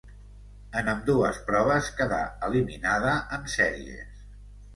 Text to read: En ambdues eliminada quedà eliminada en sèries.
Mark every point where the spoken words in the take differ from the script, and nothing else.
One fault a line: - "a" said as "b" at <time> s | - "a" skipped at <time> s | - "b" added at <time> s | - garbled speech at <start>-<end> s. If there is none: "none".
- "eliminada" said as "proves" at 1.5 s